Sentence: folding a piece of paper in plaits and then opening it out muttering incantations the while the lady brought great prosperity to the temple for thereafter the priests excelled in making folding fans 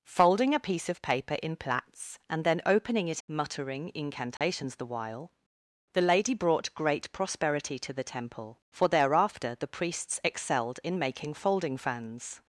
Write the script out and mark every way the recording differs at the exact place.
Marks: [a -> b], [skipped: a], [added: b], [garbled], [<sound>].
folding a piece of paper in plaits and then opening it [skipped: out] muttering incantations [dropout] the while the lady brought great prosperity to the temple for thereafter the priests excelled in making folding fans